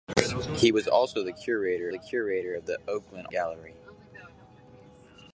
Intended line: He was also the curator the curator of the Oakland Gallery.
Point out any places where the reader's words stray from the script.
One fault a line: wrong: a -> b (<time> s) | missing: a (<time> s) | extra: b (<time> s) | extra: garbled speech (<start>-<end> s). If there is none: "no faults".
no faults